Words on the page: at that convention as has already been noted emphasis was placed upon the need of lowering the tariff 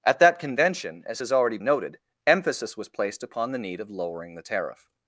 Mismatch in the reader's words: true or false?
true